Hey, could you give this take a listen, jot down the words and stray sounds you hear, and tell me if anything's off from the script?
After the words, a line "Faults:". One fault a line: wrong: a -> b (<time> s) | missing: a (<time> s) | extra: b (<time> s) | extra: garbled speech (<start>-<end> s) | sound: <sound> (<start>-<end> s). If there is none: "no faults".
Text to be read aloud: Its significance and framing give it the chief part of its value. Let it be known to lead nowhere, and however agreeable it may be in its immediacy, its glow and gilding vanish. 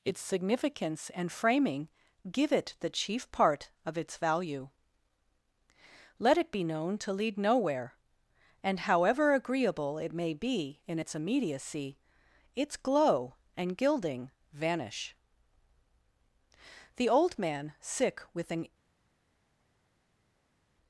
Its significance and framing give it the chief part of its value. Let it be known to lead nowhere, and however agreeable it may be in its immediacy, its glow and gilding vanish. The old man, sick with an
Faults:
extra: The old man sick with an (17.0 s)